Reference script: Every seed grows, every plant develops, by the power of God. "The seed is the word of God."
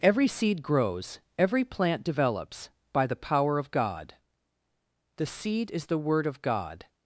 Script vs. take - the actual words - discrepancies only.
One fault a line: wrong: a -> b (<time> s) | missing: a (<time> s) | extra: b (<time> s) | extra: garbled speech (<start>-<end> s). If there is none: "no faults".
no faults